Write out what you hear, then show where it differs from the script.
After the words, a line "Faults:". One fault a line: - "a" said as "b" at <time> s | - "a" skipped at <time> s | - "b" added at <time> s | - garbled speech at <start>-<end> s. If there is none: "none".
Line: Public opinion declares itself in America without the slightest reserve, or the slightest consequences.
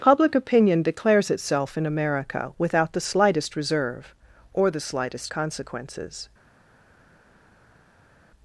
Public opinion declares itself in America without the slightest reserve, or the slightest consequences.
Faults:
none